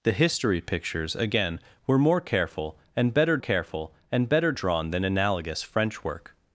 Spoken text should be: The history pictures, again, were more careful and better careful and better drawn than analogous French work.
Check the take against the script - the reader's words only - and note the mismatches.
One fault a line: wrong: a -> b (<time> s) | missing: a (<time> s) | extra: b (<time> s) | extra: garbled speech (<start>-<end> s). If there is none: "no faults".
no faults